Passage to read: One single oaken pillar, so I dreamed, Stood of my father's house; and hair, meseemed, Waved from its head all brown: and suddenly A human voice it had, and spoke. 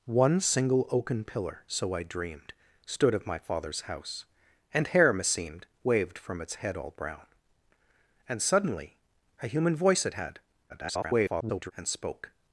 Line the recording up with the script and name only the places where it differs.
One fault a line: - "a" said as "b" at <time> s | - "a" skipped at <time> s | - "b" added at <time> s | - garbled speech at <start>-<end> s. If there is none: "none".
- garbled speech at 10.7-11.7 s